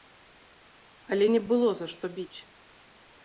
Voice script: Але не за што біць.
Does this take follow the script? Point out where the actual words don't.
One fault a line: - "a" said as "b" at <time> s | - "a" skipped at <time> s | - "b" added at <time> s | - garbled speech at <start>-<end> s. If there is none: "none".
- "было" added at 1.5 s